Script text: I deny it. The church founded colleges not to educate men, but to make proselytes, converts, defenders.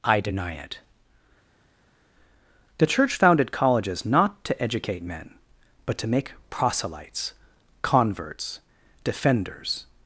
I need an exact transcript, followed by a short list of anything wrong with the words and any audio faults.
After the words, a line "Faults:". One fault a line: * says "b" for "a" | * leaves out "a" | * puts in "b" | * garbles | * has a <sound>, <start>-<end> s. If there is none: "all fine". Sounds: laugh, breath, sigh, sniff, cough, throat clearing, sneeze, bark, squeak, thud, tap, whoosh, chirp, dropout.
I deny it. The church founded colleges not to educate men, but to make proselytes, converts, defenders.
Faults:
all fine